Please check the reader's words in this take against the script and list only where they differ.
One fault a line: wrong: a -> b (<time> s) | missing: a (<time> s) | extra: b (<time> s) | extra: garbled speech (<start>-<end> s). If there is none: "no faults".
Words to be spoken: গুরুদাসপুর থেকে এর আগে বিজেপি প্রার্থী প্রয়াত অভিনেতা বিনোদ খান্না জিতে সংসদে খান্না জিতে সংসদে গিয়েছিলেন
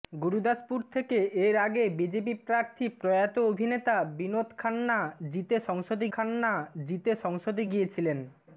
no faults